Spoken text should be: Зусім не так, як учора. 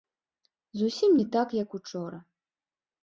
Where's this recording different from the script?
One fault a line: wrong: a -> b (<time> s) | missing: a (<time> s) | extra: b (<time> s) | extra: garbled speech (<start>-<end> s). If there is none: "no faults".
no faults